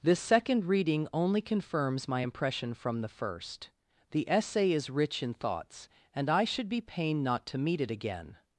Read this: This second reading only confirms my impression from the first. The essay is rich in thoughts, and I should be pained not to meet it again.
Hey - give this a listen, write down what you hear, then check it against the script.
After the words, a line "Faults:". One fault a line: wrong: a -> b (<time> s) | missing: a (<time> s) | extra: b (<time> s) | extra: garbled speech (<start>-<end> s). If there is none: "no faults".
This second reading only confirms my impression from the first. The essay is rich in thoughts, and I should be pained not to meet it again.
Faults:
no faults